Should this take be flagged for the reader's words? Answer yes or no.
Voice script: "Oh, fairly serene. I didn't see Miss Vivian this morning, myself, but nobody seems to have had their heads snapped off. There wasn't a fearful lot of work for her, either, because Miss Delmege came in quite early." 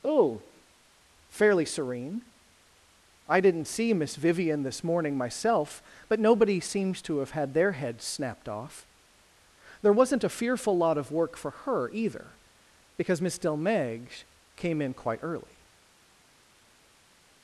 no